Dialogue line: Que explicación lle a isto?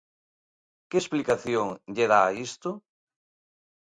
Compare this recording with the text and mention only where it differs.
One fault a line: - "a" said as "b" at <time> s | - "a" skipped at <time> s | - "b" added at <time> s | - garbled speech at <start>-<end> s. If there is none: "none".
- "dá" added at 2.1 s